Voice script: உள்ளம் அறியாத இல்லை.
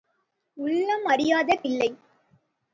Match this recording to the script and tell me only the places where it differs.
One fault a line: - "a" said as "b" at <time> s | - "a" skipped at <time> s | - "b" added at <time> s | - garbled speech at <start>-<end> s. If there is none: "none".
none